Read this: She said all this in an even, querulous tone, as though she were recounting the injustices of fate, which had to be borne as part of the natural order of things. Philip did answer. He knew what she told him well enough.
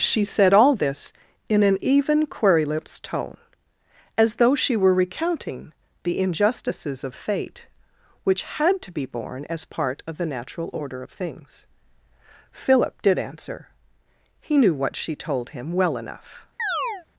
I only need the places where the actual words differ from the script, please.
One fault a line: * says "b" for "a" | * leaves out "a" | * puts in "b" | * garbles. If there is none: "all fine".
all fine